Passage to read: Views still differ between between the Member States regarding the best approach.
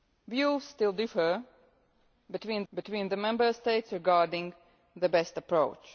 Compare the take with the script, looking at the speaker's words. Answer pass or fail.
pass